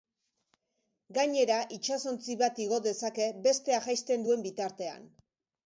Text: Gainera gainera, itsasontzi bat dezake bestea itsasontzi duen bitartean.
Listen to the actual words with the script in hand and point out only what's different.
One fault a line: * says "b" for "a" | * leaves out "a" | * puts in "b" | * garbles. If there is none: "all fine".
* leaves out "gainera"
* puts in "igo"
* says "jaisten" for "itsasontzi"